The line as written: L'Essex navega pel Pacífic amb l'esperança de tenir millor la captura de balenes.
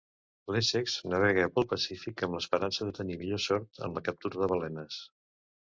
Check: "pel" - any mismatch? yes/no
no